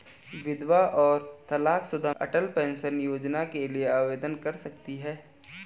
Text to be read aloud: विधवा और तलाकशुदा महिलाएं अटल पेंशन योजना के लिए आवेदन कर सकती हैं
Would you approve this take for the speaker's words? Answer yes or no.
no